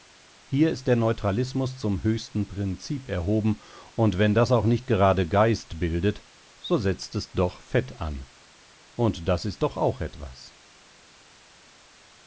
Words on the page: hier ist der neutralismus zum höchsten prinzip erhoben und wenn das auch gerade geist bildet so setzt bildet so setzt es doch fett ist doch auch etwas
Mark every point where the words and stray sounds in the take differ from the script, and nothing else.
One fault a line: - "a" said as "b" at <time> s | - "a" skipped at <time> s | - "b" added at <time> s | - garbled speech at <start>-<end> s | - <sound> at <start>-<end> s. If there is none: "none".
- "nicht" added at 4.7 s
- "bildet so setzt es doch fett" said as "es doch fett an und das" at 7.1 s